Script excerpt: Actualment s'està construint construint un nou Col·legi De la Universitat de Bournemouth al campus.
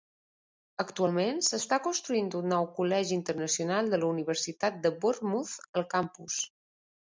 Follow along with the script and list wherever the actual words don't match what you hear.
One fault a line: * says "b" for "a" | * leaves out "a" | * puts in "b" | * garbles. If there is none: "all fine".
* leaves out "construint"
* puts in "Internacional"